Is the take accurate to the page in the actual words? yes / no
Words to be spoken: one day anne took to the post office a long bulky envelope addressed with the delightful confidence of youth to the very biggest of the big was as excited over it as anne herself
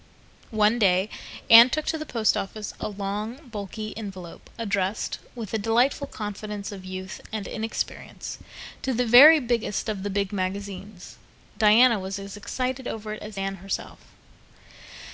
no